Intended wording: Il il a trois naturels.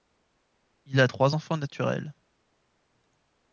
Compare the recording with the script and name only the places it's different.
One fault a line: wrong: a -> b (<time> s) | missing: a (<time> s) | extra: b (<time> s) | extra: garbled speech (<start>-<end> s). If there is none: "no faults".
missing: il (1.0 s)
extra: enfants (1.3 s)